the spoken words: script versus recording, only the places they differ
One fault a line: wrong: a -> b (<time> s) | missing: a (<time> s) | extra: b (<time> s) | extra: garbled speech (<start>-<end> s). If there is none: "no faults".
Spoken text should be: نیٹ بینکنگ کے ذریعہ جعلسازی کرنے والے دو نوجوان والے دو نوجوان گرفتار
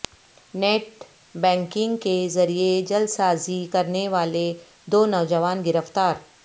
missing: والے دو نوجوان (5.6 s)